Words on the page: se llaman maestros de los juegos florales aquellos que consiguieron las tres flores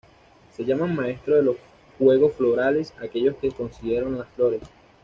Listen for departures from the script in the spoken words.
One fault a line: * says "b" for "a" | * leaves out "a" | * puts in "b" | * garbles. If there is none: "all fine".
* leaves out "tres"